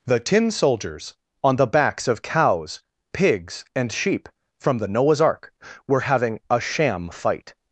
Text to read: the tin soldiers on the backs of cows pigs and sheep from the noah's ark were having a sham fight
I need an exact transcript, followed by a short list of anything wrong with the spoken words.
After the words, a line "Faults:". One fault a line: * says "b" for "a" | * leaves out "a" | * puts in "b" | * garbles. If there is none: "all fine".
the tin soldiers on the backs of cows pigs and sheep from the noah's ark were having a sham fight
Faults:
all fine